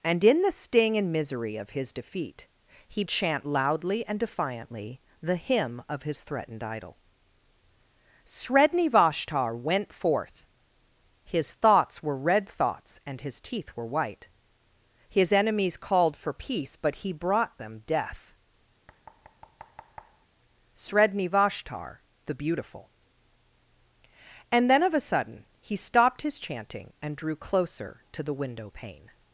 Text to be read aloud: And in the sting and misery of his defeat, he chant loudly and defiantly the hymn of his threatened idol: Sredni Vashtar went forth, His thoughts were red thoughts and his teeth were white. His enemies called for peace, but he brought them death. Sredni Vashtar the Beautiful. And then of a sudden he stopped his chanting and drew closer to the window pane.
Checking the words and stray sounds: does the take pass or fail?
fail